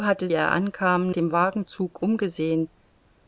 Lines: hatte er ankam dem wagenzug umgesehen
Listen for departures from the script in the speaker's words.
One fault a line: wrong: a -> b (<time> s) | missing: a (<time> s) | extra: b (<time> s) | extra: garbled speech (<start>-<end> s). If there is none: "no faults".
no faults